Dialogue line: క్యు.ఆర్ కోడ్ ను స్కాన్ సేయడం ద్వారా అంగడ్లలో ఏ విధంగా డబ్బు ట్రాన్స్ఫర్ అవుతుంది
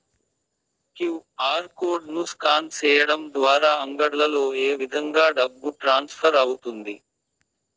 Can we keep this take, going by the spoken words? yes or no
yes